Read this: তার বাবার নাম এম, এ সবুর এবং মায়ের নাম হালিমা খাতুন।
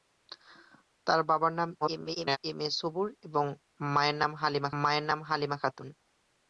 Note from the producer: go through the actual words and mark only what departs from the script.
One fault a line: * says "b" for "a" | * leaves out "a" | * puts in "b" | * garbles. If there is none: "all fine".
* garbles
* puts in "মায়ের নাম হালিমা"